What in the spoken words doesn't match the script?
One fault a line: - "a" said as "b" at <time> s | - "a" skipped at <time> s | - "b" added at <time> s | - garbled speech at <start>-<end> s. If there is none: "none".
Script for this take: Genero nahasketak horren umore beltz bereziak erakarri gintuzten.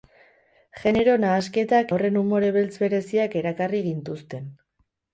none